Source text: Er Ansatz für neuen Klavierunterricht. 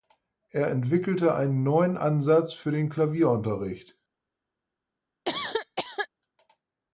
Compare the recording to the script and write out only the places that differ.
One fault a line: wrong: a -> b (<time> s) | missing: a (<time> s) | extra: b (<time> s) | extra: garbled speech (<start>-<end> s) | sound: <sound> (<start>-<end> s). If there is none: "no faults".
extra: entwickelte einen neuen (0.7 s)
wrong: neuen -> den (2.7 s)
sound: cough (5.2-6.1 s)